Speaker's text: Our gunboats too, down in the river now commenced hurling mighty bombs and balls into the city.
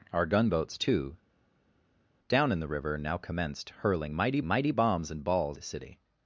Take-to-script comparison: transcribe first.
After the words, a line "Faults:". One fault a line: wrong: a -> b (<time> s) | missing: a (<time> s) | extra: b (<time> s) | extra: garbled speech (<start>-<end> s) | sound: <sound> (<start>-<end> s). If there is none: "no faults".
Our gunboats too, down in the river now commenced hurling mighty mighty bombs and balls the city.
Faults:
extra: mighty (4.4 s)
missing: into (5.6 s)